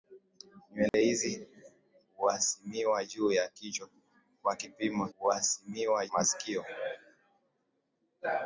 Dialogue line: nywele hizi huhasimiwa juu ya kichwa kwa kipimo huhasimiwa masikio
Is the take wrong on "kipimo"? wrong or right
right